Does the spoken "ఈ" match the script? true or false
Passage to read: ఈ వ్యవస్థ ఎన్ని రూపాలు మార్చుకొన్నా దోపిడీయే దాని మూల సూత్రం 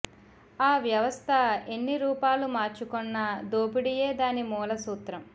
false